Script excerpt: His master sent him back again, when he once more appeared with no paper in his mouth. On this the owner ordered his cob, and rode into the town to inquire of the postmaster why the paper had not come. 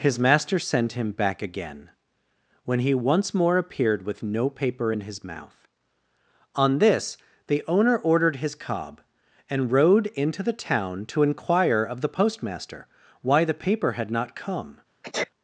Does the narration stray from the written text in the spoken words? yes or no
no